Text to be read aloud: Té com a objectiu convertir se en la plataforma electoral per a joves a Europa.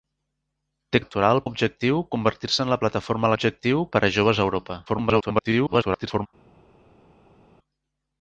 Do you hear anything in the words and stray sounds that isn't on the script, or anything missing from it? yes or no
yes